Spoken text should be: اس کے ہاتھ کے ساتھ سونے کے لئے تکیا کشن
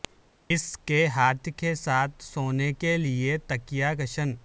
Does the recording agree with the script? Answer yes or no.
yes